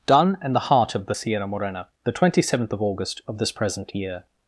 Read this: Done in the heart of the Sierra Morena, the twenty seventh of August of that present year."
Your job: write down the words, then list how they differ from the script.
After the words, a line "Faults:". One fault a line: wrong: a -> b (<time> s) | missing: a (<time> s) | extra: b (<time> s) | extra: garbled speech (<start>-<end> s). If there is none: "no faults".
Done in the heart of the Sierra Morena, the twenty seventh of August of this present year."
Faults:
wrong: that -> this (3.4 s)